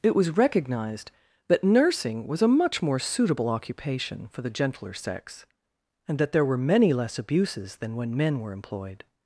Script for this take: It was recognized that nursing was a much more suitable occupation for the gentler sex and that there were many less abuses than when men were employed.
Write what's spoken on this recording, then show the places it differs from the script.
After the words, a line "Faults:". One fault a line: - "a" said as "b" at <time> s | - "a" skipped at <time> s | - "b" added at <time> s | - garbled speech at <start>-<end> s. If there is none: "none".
It was recognized that nursing was a much more suitable occupation for the gentler sex and that there were many less abuses than when men were employed.
Faults:
none